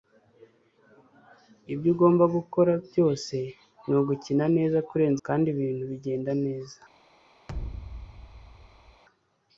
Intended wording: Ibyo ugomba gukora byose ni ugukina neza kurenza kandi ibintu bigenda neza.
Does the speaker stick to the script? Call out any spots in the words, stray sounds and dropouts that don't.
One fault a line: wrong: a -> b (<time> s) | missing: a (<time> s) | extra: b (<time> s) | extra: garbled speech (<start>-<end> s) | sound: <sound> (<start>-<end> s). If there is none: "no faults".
sound: thud (7.5-9.0 s)